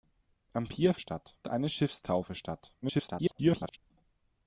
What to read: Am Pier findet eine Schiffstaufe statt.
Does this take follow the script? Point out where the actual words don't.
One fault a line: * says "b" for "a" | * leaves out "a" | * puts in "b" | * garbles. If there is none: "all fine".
* says "statt" for "findet"
* garbles